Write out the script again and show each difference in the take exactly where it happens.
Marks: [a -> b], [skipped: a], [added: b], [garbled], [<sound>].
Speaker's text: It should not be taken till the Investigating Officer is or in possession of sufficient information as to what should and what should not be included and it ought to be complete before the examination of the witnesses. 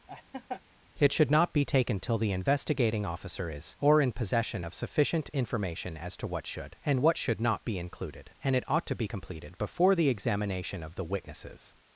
[laugh] It should not be taken till the Investigating Officer is or in possession of sufficient information as to what should and what should not be included and it ought to be [complete -> completed] before the examination of the witnesses.